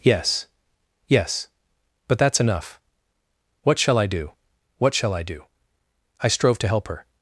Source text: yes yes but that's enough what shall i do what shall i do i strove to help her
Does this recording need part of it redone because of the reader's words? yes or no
no